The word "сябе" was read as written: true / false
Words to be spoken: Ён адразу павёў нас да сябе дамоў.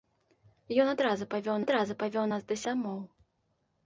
false